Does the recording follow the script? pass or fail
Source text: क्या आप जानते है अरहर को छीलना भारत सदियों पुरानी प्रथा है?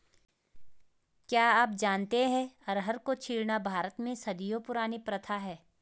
fail